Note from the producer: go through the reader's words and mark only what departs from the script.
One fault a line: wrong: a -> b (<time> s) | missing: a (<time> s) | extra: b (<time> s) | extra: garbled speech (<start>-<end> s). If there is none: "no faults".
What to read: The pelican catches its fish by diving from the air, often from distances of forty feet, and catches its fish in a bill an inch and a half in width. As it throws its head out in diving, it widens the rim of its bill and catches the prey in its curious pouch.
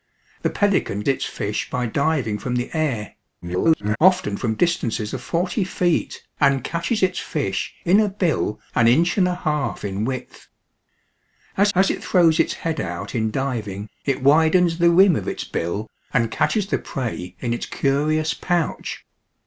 missing: catches (1.0 s)
extra: garbled speech (3.4-4.0 s)
extra: as (11.8 s)